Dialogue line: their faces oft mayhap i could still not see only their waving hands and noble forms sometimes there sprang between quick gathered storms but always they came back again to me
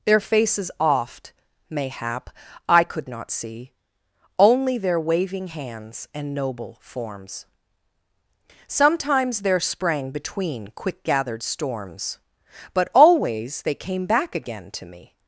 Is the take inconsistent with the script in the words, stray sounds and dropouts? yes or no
yes